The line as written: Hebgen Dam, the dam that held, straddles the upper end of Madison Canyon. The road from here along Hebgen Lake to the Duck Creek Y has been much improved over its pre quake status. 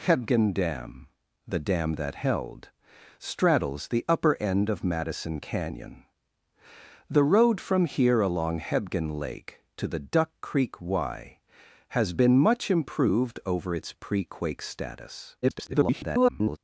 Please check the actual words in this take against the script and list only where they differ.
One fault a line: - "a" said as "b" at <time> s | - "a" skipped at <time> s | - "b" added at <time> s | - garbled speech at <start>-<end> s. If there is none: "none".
- garbled speech at 15.4-16.6 s